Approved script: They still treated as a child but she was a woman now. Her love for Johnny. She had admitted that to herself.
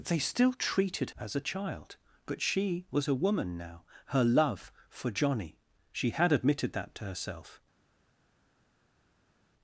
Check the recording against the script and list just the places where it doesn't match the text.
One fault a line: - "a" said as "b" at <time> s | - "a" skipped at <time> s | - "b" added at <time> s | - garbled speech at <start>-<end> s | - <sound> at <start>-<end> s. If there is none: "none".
none